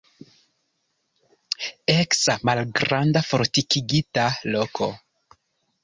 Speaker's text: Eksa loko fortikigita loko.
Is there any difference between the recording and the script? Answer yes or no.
yes